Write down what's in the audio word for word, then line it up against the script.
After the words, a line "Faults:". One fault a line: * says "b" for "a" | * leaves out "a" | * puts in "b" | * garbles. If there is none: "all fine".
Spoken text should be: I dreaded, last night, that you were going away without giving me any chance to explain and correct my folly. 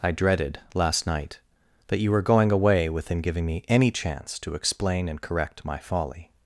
I dreaded, last night, that you were going away within giving me any chance to explain and correct my folly.
Faults:
* says "within" for "without"